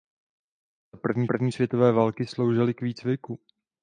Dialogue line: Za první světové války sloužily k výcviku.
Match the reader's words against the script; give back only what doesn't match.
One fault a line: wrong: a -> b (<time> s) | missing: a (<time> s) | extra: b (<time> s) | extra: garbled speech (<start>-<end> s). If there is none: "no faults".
extra: první (1.3 s)